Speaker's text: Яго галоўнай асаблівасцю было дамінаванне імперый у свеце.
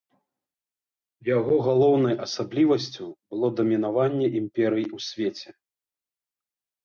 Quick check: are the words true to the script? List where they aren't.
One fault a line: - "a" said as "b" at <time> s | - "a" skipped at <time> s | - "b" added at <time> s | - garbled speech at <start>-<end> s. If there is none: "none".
none